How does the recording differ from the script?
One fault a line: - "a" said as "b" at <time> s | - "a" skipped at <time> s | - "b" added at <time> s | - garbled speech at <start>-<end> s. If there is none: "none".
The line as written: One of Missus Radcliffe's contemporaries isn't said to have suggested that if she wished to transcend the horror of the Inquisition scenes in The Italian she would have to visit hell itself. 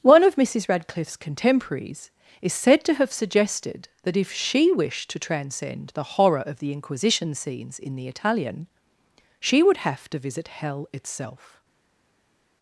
- "isn't" said as "is" at 2.4 s